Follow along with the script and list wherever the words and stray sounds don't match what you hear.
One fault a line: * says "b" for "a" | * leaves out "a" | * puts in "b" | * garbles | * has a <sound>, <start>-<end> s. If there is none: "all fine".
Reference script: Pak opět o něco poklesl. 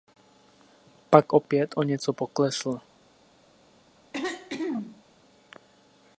* has a throat clearing, 4.1-5.0 s